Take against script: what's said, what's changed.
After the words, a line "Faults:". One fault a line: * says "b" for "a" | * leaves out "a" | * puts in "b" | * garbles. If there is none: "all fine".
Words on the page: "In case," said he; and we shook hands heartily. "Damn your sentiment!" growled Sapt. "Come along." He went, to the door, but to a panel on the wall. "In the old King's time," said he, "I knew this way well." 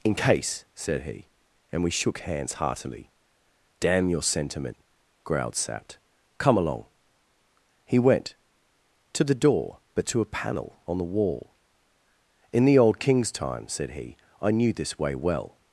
"In case," said he; and we shook hands heartily. "Damn your sentiment!" growled Sapt. "Come along." He went, to the door, but to a panel on the wall. "In the old King's time," said he, "I knew this way well."
Faults:
all fine